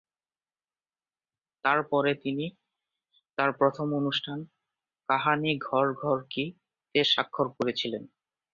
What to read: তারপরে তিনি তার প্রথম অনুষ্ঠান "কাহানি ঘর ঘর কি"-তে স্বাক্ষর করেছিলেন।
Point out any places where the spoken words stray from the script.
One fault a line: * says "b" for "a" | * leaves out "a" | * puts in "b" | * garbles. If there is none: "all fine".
all fine